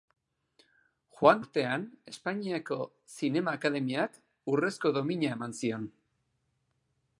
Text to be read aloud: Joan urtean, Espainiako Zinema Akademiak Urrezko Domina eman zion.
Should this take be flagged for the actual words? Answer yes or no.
no